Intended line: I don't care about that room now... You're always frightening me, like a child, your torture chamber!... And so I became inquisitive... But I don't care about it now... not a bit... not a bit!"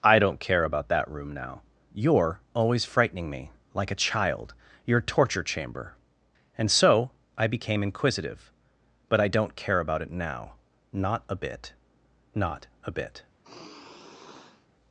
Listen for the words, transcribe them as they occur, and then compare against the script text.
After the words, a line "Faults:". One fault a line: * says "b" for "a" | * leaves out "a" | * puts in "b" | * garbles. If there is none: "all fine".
I don't care about that room now... You're always frightening me, like a child, your torture chamber!... And so I became inquisitive... But I don't care about it now... not a bit... not a bit!"
Faults:
all fine